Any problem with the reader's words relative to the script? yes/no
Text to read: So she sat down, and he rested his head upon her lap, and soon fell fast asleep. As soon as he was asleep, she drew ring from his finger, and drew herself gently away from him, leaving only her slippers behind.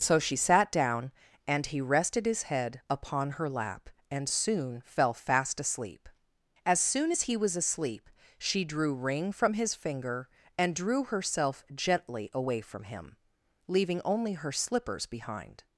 no